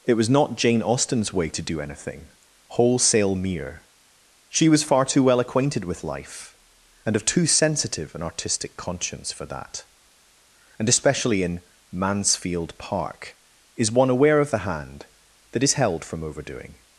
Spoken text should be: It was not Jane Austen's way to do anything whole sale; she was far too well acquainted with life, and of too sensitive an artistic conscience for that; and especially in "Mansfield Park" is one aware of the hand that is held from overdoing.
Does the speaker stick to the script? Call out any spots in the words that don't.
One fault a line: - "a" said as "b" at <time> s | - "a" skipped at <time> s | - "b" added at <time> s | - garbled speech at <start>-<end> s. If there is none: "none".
- "whole sale" said as "wholesale mere" at 2.7 s